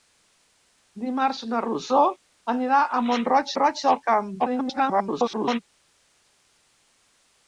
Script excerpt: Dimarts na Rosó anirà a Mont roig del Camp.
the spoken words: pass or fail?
fail